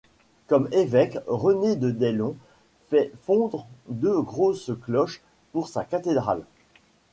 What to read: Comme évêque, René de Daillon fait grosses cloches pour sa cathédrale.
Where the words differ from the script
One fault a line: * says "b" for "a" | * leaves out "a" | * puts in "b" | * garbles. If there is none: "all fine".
* puts in "fondre deux"